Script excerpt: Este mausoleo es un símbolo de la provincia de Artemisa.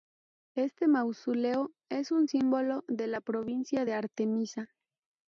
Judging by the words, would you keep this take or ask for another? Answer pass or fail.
pass